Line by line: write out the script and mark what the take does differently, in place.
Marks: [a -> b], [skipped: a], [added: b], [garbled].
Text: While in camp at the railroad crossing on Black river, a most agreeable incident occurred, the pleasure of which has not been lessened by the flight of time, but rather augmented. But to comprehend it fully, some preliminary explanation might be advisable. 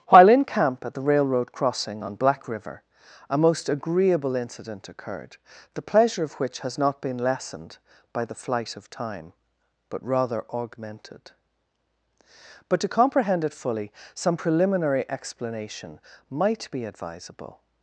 While in camp at the railroad crossing on Black river, a most agreeable incident occurred, the pleasure of which has not been lessened by the flight of time, but rather augmented. But to comprehend it fully, some preliminary explanation might be advisable.